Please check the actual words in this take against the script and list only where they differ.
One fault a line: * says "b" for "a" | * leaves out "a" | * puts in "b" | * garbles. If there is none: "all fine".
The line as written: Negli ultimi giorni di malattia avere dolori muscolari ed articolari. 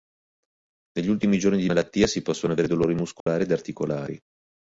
* puts in "si possono"